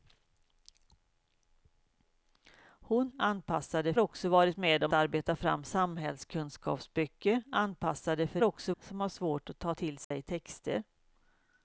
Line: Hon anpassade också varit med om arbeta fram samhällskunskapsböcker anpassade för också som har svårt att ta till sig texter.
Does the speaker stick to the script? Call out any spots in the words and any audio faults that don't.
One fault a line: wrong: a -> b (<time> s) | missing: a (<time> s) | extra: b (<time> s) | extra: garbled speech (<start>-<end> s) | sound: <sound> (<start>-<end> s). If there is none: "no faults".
sound: dropout (10.0-10.1 s)